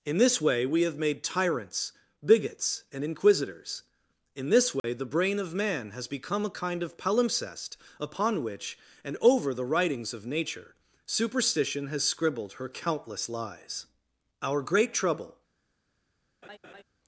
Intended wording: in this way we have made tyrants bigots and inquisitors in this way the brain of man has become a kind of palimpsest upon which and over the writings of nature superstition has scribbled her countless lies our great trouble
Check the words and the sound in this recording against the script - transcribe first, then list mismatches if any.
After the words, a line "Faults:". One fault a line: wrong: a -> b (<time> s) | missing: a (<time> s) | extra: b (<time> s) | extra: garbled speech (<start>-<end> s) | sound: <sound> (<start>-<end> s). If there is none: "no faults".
in this way we have made tyrants bigots and inquisitors in this way the brain of man has become a kind of palimpsest upon which and over the writings of nature superstition has scribbled her countless lies our great trouble
Faults:
sound: dropout (4.8-4.8 s)
sound: laugh (16.4-16.8 s)